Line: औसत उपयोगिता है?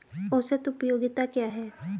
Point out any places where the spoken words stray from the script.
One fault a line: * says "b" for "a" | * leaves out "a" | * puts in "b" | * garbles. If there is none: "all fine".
* puts in "क्या"